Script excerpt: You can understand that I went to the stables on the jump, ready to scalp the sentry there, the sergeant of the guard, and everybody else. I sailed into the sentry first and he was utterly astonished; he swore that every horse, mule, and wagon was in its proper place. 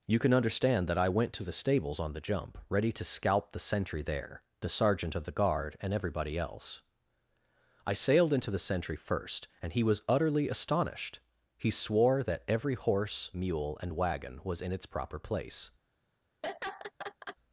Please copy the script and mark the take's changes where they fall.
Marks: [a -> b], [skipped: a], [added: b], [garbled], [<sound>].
You can understand that I went to the stables on the jump, ready to scalp the sentry there, the sergeant of the guard, and everybody else. I sailed into the sentry first and he was utterly astonished; he swore that every horse, mule, and wagon was in its proper place. [laugh]